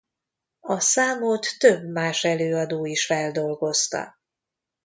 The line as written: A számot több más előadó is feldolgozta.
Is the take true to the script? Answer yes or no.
yes